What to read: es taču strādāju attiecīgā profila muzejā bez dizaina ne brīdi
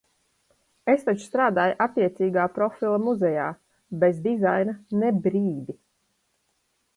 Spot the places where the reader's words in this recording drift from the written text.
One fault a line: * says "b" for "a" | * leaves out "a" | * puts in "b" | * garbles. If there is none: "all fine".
all fine